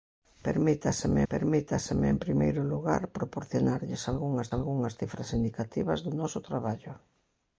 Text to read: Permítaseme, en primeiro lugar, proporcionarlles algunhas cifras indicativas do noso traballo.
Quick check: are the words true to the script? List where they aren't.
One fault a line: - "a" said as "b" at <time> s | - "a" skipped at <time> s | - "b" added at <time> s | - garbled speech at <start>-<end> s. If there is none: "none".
- "permítaseme" added at 1.3 s
- "algunhas" added at 4.6 s